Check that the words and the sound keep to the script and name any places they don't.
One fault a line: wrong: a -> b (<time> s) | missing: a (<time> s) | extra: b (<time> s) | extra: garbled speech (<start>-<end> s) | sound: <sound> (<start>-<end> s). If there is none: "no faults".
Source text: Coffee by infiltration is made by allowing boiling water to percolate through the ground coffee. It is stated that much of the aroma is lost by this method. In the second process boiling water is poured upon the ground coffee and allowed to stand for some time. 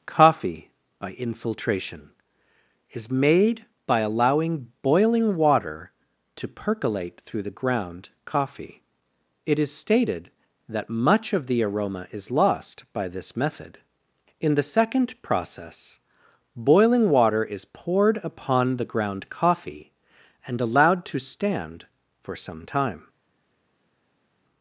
no faults